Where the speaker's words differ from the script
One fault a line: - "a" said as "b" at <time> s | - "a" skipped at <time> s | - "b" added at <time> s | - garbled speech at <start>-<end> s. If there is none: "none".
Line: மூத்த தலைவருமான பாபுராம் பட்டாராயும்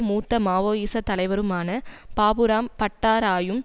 - "மாவோயிச" added at 0.4 s